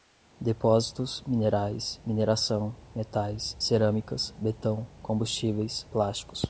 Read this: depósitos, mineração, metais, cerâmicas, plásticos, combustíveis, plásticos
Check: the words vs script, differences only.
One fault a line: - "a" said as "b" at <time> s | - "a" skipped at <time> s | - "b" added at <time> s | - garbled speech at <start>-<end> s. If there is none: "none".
- "minerais" added at 1.3 s
- "plásticos" said as "betão" at 4.4 s